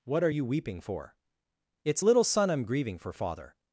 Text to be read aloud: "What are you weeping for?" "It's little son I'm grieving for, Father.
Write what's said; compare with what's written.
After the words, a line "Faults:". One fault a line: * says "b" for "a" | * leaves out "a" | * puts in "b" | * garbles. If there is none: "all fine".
"What are you weeping for?" "It's little son I'm grieving for, Father.
Faults:
all fine